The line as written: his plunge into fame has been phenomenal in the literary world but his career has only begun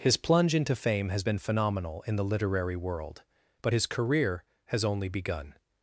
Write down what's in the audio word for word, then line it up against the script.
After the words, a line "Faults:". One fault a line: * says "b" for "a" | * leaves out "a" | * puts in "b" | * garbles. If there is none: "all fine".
his plunge into fame has been phenomenal in the literary world but his career has only begun
Faults:
all fine